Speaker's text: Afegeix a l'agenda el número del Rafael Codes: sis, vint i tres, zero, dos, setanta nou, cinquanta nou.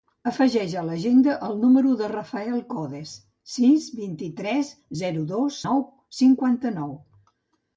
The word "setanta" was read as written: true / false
false